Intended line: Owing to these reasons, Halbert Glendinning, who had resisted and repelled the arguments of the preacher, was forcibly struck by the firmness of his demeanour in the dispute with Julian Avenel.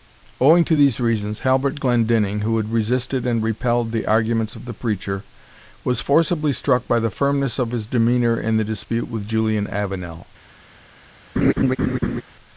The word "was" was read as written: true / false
true